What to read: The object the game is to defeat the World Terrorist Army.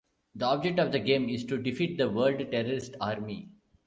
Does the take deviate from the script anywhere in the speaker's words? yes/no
yes